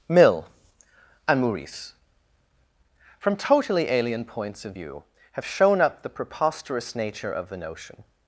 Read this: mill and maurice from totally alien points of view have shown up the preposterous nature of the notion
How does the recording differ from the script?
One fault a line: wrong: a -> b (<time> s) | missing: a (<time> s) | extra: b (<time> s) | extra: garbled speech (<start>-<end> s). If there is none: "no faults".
no faults